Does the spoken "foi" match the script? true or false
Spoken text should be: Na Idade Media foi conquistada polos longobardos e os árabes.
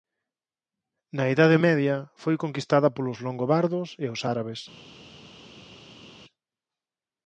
true